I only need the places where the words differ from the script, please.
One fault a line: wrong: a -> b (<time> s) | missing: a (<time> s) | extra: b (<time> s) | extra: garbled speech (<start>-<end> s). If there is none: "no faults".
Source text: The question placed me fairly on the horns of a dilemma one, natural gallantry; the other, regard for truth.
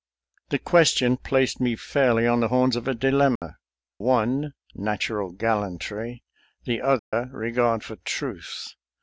no faults